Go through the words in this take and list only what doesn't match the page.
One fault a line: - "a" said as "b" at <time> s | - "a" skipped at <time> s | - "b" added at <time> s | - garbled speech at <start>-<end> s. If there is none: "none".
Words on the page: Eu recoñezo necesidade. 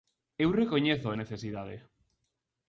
none